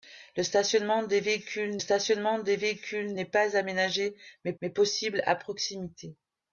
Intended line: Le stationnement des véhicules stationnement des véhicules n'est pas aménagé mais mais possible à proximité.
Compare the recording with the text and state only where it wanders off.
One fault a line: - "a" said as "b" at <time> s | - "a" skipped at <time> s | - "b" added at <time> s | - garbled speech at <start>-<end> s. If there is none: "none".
none